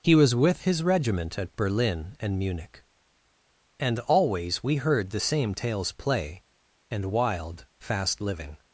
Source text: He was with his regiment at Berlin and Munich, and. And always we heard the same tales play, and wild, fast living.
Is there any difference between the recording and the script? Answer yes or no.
yes